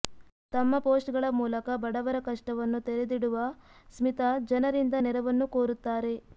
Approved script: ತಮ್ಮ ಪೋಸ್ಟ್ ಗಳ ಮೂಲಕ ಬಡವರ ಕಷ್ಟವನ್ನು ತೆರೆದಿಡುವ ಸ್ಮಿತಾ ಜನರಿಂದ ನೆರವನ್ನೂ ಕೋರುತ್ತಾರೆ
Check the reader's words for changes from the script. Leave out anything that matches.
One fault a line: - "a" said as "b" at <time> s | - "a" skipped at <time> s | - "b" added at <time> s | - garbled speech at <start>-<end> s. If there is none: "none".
none